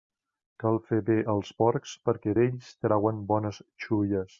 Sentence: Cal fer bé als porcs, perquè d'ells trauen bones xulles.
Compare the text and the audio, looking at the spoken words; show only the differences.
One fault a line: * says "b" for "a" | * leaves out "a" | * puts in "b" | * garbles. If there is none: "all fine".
all fine